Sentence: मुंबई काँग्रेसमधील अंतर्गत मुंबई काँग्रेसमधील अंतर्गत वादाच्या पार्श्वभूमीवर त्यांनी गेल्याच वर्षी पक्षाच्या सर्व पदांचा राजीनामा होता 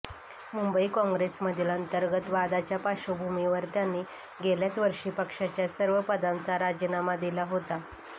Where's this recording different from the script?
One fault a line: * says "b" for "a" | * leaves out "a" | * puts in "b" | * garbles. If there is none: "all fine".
* leaves out "मुंबई काँग्रेसमधील अंतर्गत"
* puts in "दिला"